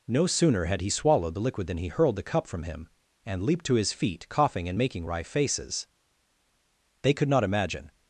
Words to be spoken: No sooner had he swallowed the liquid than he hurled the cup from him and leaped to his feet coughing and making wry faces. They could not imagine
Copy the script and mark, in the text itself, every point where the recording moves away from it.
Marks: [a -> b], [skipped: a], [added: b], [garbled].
No sooner had he swallowed the liquid than he hurled the cup from him and leaped to his feet coughing and making wry faces. They could not imagine